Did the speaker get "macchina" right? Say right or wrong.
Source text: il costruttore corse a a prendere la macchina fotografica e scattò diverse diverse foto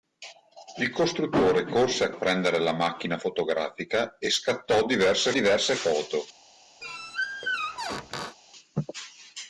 right